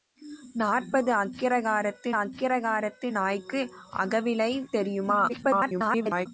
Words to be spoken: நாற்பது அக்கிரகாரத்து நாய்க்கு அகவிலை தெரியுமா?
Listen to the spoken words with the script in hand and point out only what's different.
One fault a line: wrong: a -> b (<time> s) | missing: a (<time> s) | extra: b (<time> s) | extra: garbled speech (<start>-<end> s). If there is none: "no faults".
extra: அக்கிரகாரத்து (2.1 s)
extra: garbled speech (5.3-6.3 s)